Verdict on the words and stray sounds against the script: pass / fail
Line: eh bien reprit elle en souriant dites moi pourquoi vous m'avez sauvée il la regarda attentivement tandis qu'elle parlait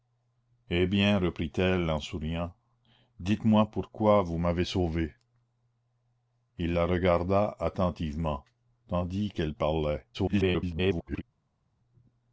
fail